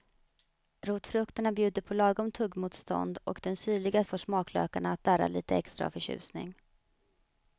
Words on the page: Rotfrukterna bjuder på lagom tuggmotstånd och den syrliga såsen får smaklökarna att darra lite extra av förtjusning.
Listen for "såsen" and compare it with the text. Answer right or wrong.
wrong